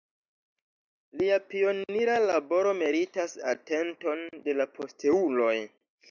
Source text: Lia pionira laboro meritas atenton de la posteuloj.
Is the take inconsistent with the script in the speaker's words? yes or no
no